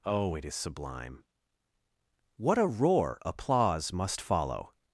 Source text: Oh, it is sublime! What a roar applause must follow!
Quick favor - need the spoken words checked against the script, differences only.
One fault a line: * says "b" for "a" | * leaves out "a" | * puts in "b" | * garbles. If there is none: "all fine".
all fine